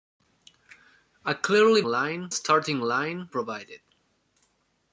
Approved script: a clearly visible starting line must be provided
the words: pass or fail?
fail